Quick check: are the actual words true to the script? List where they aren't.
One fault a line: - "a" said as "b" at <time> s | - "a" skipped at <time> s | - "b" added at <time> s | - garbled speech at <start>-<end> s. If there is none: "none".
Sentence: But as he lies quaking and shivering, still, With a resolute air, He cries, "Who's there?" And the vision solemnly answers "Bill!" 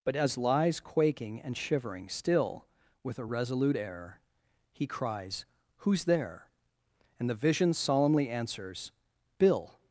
- "he" skipped at 0.4 s